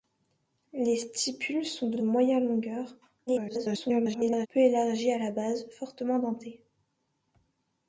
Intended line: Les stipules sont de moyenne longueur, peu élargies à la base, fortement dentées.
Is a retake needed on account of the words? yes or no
yes